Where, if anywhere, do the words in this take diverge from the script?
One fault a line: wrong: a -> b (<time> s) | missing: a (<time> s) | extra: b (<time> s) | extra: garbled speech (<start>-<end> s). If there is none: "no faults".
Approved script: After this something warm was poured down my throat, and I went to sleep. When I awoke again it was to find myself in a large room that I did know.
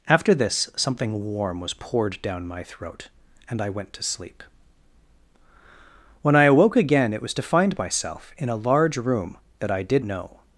no faults